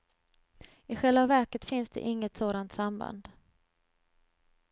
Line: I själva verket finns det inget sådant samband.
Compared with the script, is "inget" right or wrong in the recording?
right